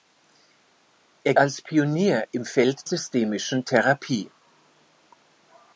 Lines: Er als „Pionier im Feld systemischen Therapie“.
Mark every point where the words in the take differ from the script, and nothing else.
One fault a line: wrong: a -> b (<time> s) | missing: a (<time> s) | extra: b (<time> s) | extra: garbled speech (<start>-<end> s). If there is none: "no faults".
no faults